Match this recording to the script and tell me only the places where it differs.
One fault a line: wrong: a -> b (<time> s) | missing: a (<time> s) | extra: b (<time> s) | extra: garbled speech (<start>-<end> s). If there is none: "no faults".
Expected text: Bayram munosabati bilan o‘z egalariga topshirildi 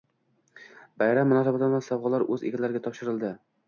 extra: sovg‘alar (1.9 s)